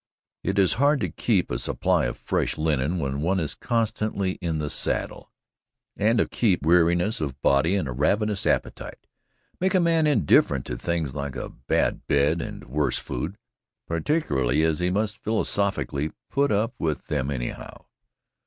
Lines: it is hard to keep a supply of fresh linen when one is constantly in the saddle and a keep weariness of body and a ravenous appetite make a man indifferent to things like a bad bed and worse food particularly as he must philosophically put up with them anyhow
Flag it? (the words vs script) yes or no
no